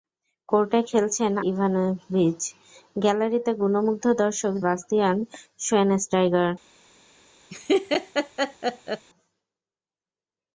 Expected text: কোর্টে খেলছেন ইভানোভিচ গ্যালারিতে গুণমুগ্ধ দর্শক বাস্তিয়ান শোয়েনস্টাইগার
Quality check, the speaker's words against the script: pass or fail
pass